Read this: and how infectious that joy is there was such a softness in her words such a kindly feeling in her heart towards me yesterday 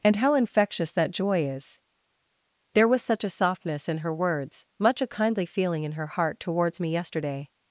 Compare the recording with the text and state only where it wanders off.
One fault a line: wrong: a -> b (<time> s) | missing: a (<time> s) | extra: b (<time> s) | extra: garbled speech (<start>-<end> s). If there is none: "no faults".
wrong: such -> much (4.8 s)